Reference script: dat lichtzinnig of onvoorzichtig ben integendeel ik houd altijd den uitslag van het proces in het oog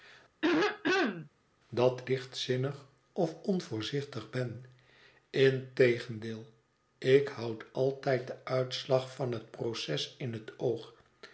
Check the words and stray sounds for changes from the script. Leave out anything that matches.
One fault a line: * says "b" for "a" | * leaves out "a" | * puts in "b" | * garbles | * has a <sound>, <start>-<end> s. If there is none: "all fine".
* has a throat clearing, 0.4-1.3 s